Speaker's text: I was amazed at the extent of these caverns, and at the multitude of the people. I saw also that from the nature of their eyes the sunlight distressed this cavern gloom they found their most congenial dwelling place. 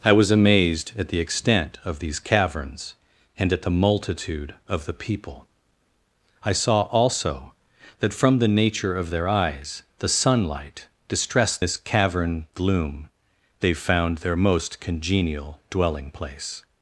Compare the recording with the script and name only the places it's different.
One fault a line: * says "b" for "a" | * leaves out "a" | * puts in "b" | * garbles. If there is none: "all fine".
all fine